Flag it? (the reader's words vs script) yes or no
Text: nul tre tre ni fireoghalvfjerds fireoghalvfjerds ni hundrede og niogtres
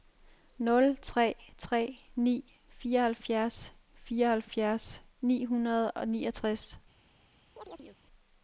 no